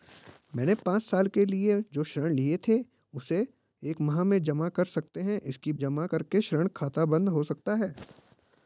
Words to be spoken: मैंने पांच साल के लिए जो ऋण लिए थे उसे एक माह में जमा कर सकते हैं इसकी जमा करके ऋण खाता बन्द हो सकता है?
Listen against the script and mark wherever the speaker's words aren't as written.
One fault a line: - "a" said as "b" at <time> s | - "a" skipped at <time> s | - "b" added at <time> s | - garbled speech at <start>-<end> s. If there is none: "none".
none